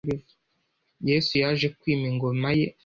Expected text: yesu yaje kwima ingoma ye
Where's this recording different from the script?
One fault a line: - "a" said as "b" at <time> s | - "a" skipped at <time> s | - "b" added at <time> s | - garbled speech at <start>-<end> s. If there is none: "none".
none